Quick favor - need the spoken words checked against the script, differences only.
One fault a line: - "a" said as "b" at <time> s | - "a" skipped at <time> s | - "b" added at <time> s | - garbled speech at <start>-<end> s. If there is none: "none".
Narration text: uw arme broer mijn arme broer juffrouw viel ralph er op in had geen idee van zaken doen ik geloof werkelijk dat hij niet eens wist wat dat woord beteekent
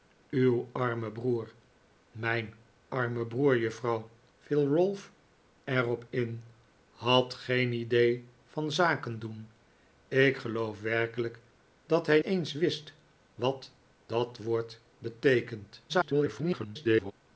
- "niet" skipped at 12.2 s
- garbled speech at 15.9-17.1 s